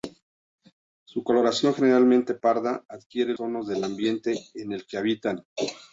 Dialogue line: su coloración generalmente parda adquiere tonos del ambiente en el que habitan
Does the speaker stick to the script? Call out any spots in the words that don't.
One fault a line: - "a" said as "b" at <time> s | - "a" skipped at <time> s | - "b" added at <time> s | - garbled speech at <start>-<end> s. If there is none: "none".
none